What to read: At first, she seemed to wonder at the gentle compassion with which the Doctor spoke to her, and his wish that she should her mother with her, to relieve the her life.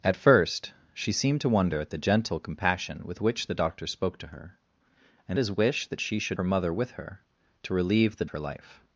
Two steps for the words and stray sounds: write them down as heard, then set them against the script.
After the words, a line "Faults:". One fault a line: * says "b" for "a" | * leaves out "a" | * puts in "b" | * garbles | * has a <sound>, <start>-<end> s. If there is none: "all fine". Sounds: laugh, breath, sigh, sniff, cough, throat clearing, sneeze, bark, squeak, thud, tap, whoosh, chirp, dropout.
At first, she seemed to wonder at the gentle compassion with which the Doctor spoke to her, and his wish that she should her mother with her, to relieve the her life.
Faults:
all fine